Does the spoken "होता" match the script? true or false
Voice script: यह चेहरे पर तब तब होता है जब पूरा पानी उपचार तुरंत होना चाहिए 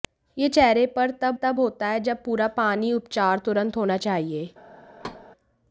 true